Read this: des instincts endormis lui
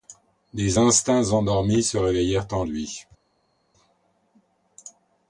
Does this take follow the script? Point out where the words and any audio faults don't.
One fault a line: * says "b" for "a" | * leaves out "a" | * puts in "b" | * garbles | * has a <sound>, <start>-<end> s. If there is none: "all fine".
* puts in "se réveillèrent en"